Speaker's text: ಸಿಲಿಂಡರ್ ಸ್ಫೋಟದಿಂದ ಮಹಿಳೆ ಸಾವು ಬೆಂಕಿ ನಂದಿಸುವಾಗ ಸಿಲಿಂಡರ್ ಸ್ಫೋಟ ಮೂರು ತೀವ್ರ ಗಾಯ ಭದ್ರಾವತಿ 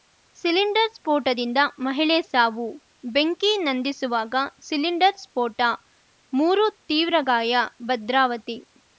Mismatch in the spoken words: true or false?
false